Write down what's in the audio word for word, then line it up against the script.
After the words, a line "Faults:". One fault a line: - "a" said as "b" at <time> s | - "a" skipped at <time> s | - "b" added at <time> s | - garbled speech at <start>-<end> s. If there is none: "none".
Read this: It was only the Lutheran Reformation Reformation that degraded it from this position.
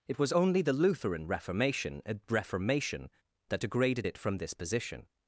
It was only the Lutheran Reformation Reformation that degraded it from this position.
Faults:
none